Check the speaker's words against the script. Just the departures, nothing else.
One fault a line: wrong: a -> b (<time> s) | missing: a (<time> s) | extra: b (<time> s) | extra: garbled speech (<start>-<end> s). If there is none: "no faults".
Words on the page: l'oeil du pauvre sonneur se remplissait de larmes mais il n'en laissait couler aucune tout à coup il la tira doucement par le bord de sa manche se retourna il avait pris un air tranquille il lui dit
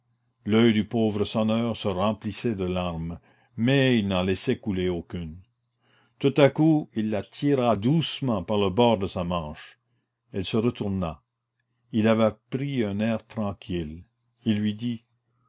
extra: elle (10.3 s)